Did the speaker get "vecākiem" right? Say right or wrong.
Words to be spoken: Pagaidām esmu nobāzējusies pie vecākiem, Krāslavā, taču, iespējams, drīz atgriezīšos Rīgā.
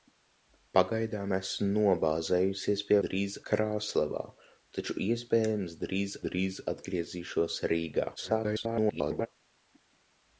wrong